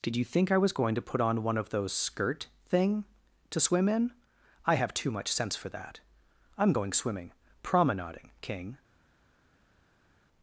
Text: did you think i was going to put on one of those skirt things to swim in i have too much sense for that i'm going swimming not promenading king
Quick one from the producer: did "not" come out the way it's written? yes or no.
no